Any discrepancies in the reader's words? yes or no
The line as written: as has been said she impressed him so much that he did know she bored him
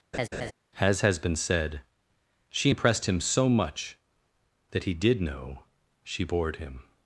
no